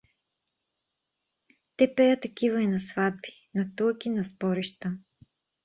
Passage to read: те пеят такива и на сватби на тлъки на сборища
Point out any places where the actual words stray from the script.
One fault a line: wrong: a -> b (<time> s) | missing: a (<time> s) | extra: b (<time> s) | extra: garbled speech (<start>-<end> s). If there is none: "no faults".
no faults